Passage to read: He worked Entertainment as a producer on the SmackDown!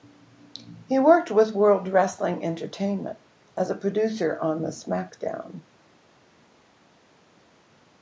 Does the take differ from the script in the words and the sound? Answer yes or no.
yes